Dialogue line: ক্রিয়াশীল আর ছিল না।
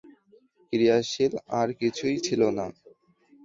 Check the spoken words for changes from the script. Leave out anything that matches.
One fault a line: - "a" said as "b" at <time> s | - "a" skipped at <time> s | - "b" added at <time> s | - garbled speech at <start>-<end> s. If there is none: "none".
- "কিছুই" added at 1.8 s